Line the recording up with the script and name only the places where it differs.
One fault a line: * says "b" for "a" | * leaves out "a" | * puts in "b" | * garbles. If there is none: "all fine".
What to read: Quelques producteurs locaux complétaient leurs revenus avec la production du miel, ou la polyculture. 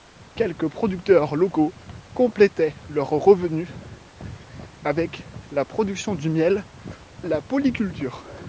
* leaves out "ou"